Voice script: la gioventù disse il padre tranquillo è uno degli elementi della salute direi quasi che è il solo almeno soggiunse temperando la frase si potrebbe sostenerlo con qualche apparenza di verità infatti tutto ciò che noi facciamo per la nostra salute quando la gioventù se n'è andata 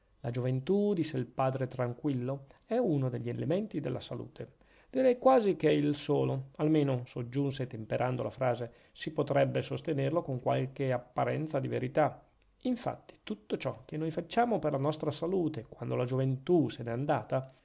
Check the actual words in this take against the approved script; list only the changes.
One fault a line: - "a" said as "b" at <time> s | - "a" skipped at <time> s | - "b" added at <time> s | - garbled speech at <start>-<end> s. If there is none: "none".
none